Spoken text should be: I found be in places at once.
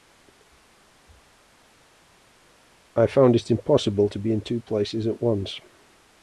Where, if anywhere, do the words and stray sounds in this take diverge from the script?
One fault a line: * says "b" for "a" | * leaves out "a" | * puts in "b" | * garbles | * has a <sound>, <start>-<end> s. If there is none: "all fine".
* puts in "it impossible to"
* puts in "two"